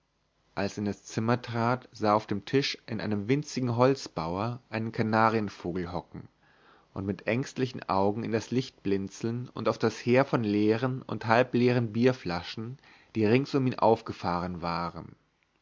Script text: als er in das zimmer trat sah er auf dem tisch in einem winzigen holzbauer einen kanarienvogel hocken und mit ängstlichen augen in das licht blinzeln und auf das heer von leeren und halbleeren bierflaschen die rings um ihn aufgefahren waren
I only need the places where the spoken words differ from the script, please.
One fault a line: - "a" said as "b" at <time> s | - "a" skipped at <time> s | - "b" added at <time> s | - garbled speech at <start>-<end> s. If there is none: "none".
none